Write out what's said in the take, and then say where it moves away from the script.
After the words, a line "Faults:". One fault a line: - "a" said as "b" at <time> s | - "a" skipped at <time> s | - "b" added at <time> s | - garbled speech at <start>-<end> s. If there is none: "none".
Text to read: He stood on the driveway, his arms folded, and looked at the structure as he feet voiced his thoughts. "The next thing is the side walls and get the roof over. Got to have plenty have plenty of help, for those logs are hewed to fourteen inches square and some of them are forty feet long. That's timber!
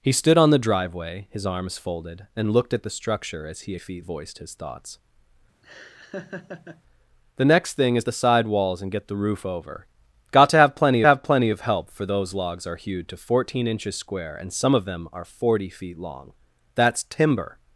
He stood on the driveway, his arms folded, and looked at the structure as he feet voiced his thoughts. "The next thing is the side walls and get the roof over. Got to have plenty have plenty of help, for those logs are hewed to fourteen inches square and some of them are forty feet long. That's timber!
Faults:
none